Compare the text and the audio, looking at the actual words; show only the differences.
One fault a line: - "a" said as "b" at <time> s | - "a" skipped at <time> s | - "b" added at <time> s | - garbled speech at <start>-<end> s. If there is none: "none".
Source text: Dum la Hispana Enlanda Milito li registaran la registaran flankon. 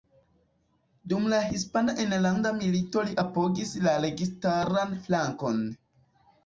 - "registaran" said as "apogis" at 3.2 s